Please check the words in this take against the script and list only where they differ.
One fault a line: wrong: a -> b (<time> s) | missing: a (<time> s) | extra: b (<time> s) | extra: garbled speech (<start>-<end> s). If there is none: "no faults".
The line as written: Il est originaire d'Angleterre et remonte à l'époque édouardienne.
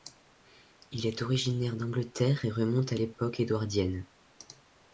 no faults